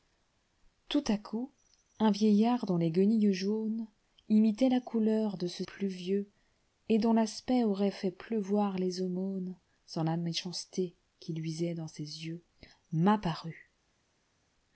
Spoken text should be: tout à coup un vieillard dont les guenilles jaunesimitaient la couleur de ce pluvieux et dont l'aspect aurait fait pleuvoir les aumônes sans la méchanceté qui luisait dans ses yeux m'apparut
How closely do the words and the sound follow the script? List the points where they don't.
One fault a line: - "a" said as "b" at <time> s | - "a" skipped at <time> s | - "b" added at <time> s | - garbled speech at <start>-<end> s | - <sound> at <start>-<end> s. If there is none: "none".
none